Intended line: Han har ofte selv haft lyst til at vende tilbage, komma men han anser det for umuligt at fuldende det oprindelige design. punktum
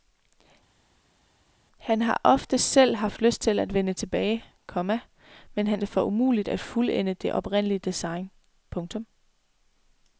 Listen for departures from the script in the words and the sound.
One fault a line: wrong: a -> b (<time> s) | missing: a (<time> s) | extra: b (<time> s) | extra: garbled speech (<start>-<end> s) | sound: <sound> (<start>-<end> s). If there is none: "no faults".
missing: anser (5.8 s)